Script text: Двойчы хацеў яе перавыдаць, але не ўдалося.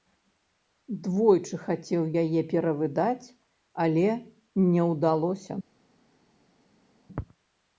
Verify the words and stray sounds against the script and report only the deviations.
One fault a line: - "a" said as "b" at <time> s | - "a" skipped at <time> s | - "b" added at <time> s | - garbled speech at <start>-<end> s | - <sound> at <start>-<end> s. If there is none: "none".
none